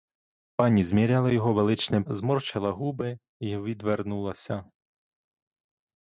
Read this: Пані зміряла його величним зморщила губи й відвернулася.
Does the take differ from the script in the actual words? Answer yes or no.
no